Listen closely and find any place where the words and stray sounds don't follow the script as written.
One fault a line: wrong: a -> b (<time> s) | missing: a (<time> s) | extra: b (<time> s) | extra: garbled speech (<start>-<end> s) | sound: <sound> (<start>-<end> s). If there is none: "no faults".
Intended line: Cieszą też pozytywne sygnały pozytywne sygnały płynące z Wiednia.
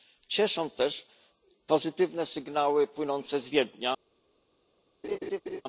missing: pozytywne sygnały (2.9 s)
sound: laugh (5.0-5.6 s)